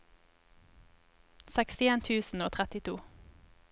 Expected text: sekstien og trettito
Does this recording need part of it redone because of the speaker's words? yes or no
yes